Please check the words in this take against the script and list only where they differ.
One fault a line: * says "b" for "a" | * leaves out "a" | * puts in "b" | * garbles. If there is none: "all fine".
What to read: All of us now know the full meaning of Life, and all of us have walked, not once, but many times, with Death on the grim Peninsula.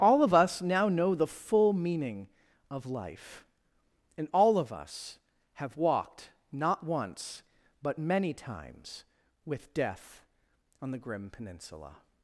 all fine